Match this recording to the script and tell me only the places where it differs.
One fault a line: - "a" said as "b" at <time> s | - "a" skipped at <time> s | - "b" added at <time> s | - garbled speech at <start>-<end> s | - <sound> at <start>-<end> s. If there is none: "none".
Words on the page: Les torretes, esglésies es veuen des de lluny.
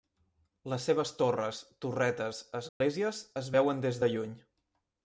- "seves torres" added at 0.9 s
- dropout at 2.7-2.8 s